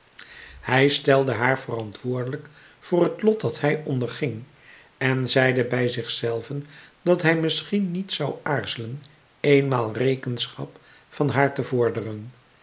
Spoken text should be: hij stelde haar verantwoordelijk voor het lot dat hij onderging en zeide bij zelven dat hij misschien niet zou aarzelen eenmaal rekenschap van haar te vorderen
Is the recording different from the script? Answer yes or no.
yes